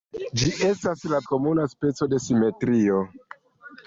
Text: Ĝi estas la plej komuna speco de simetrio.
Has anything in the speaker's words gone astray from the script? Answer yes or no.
yes